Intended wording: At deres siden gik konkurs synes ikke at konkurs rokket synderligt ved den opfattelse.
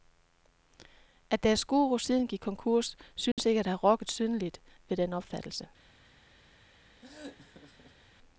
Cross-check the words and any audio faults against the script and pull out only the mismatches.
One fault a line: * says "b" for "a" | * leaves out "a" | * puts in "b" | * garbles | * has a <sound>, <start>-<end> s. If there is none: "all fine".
* puts in "guru"
* has a dropout, 3.3-3.4 s
* says "have" for "konkurs"
* has a laugh, 7.0-8.1 s